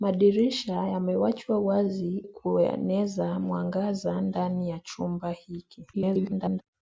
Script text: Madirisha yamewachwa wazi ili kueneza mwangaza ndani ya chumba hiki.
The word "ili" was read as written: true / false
false